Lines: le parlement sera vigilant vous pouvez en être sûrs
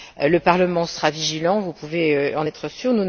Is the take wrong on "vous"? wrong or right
right